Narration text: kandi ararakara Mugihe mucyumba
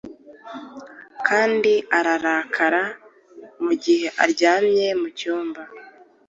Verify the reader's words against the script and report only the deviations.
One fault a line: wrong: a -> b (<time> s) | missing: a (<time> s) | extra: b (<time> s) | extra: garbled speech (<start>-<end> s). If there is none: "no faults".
extra: aryamye (4.2 s)